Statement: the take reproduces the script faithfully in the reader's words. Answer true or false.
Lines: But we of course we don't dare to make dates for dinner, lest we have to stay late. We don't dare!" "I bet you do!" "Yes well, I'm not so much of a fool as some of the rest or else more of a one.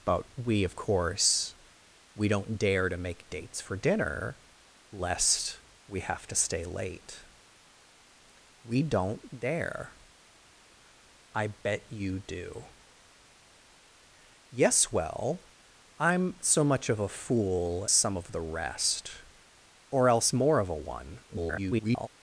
false